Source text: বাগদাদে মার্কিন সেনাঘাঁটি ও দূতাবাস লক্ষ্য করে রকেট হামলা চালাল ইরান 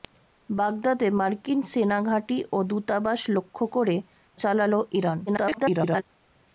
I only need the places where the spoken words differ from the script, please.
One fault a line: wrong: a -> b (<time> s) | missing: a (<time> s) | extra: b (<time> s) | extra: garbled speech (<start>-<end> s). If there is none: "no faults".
missing: রকেট হামলা (4.0 s)
extra: garbled speech (5.3-6.0 s)